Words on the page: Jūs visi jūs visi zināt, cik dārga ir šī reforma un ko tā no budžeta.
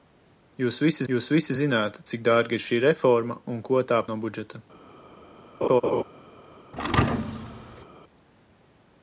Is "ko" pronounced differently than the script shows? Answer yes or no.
no